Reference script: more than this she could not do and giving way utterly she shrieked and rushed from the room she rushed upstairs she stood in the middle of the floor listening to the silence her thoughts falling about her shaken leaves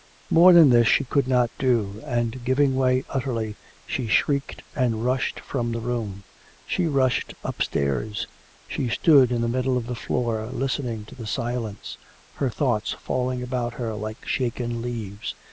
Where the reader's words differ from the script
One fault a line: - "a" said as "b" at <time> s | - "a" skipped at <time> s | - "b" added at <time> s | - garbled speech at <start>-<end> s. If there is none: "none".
- "like" added at 14.0 s